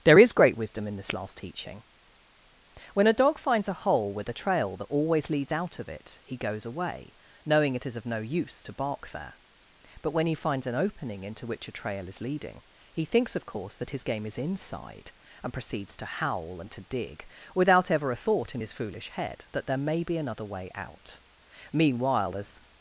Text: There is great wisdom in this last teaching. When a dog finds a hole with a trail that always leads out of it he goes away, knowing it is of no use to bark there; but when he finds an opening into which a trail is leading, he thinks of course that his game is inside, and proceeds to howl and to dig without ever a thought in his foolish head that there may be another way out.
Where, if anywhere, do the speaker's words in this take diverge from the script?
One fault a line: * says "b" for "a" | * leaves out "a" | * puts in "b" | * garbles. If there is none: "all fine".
* puts in "Meanwhile as"